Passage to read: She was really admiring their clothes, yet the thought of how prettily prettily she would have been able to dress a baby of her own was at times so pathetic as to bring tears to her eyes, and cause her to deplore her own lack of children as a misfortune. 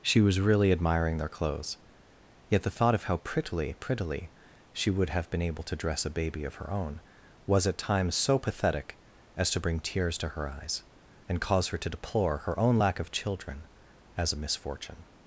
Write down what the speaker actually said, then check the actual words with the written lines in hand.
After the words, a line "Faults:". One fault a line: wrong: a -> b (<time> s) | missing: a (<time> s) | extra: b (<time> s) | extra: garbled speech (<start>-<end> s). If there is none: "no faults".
She was really admiring their clothes, yet the thought of how prettily prettily she would have been able to dress a baby of her own was at times so pathetic as to bring tears to her eyes, and cause her to deplore her own lack of children as a misfortune.
Faults:
no faults